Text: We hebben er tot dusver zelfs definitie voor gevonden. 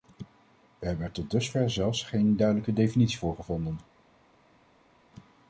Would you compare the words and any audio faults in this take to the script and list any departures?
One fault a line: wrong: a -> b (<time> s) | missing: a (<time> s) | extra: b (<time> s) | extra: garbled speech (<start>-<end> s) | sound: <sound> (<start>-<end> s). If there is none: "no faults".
extra: geen duidelijke (2.0 s)